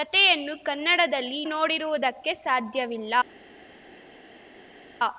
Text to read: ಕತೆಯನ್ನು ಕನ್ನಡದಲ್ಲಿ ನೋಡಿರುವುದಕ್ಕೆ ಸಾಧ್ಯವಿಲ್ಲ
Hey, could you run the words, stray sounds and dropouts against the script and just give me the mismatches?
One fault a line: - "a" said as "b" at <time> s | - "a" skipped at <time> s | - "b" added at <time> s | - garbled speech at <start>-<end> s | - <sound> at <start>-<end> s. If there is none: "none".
none